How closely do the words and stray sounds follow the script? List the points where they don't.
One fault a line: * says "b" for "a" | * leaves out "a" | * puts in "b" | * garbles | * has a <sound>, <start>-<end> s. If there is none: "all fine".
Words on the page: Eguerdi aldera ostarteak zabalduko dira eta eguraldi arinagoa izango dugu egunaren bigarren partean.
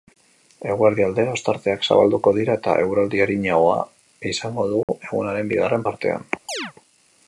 * has a dropout, 4.8-4.9 s
* has a chirp, 6.5-6.7 s